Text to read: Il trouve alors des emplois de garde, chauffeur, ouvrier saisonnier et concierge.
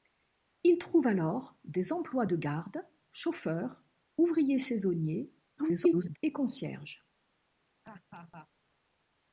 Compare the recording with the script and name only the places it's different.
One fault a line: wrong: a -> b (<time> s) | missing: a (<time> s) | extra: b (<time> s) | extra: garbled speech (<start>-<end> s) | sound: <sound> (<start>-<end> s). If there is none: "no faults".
extra: garbled speech (5.6-6.2 s)
sound: laugh (7.8-8.5 s)